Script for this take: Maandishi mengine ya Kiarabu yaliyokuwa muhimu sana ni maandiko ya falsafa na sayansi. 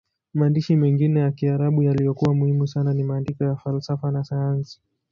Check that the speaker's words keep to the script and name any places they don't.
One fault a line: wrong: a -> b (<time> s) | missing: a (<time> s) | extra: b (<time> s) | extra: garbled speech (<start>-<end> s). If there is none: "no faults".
no faults